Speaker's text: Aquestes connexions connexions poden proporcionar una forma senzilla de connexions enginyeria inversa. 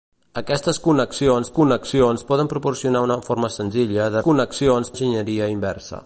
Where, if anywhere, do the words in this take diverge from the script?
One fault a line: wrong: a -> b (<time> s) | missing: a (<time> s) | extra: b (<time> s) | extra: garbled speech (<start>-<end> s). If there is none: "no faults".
no faults